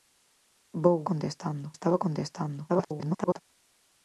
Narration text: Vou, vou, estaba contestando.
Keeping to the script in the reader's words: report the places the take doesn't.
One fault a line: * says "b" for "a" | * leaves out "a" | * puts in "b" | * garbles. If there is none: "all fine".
* says "contestando" for "vou"
* garbles